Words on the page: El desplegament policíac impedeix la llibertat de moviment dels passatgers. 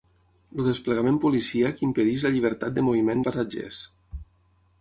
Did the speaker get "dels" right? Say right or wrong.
wrong